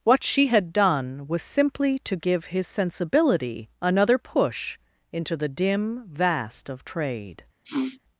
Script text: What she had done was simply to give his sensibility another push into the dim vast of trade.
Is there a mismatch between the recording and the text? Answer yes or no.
no